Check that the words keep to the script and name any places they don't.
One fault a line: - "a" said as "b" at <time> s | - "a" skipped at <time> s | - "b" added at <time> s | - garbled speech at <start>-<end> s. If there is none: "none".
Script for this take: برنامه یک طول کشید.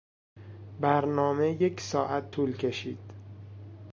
- "ساعت" added at 1.8 s